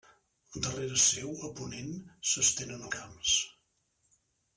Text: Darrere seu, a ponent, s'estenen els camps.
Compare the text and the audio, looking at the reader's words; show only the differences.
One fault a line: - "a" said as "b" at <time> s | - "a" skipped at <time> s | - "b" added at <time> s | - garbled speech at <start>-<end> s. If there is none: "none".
- "els" skipped at 2.9 s